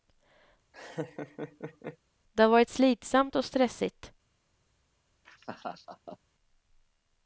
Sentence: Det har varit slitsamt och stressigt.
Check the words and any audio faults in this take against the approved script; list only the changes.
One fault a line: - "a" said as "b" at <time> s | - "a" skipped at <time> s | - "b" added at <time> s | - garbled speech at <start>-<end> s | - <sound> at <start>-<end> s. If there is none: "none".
- laugh at 0.7-2.0 s
- laugh at 5.2-6.2 s